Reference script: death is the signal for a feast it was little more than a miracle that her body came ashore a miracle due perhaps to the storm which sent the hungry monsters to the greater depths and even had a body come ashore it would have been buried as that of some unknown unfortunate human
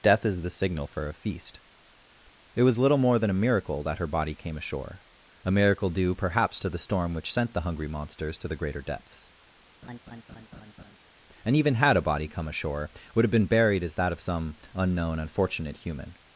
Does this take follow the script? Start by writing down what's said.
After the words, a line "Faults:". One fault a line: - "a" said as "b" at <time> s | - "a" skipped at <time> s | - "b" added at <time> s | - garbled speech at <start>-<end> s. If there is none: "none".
death is the signal for a feast it was little more than a miracle that her body came ashore a miracle due perhaps to the storm which sent the hungry monsters to the greater depths and even had a body come ashore would have been buried as that of some unknown unfortunate human
Faults:
- "it" skipped at 12.9 s